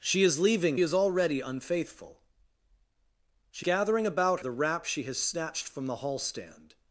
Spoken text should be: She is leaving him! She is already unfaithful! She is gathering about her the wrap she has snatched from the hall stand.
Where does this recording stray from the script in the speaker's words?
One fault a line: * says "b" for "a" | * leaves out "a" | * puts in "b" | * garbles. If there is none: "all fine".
* leaves out "him She"
* leaves out "is"
* leaves out "her"